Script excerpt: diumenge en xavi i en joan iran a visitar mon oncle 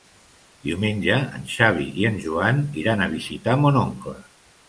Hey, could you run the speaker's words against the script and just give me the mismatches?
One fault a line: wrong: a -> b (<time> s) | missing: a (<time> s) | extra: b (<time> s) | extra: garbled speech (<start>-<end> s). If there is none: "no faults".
no faults